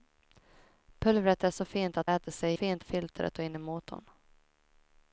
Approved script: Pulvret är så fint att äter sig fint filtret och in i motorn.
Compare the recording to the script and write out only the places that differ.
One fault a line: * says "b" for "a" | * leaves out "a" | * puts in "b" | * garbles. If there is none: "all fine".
all fine